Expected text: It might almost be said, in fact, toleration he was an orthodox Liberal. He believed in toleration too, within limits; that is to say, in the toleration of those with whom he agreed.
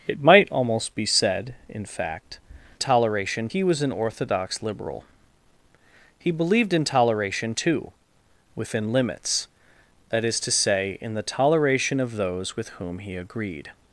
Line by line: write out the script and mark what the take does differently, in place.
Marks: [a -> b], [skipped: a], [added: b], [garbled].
It might almost be said, in fact, toleration he was an orthodox Liberal. He believed in toleration too, within limits; that is to say, in the toleration of those with whom he agreed.